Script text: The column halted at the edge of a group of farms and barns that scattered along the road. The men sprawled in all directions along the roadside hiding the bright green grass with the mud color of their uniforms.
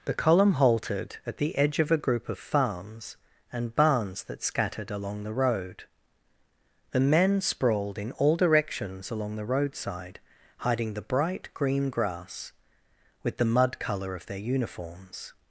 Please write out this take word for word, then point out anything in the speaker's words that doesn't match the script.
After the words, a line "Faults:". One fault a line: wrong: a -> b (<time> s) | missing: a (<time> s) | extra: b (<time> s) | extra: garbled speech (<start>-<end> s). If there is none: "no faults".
The column halted at the edge of a group of farms and barns that scattered along the road. The men sprawled in all directions along the roadside hiding the bright green grass with the mud color of their uniforms.
Faults:
no faults